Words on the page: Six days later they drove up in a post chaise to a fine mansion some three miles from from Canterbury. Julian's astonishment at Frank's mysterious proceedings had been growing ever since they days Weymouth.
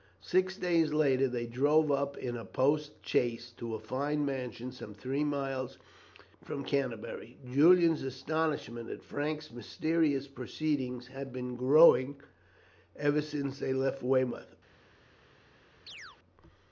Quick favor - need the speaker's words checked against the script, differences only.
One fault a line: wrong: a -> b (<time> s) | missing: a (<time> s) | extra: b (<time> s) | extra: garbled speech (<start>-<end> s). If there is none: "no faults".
missing: from (6.6 s)
wrong: days -> left (13.7 s)